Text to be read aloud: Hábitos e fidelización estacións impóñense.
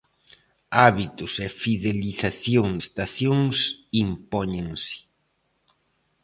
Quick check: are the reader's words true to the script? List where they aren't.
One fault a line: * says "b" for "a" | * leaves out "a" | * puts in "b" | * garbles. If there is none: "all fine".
all fine